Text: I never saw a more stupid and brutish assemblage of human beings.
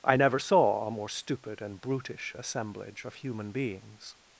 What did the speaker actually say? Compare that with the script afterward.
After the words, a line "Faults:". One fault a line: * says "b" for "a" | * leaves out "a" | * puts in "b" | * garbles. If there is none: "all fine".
I never saw a more stupid and brutish assemblage of human beings.
Faults:
all fine